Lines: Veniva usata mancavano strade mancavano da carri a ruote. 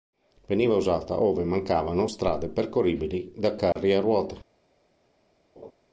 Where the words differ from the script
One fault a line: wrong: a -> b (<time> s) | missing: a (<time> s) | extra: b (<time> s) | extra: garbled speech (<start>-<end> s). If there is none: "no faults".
extra: ove (1.2 s)
wrong: mancavano -> percorribili (2.5 s)